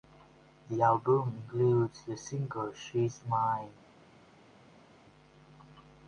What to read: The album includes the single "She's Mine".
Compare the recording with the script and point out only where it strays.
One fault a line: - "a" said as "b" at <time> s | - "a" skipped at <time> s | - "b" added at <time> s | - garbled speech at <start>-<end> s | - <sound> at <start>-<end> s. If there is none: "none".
none